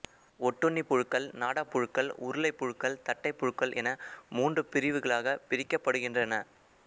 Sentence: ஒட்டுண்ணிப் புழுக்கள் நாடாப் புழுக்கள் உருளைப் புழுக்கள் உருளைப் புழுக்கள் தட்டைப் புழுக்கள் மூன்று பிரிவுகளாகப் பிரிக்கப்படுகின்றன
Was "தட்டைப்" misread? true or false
true